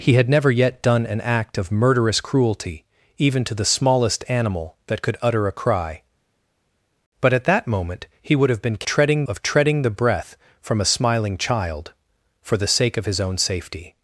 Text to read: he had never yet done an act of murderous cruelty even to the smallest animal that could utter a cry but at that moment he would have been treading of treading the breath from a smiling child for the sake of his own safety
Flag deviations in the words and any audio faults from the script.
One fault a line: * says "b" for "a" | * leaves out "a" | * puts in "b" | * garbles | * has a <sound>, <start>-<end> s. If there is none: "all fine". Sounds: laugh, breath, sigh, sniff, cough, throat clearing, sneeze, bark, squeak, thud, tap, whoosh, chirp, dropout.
all fine